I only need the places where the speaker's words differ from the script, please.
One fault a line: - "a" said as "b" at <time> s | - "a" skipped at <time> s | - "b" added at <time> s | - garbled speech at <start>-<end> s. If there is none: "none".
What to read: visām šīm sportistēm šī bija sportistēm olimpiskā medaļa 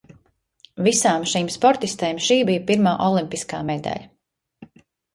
- "sportistēm" said as "pirmā" at 2.7 s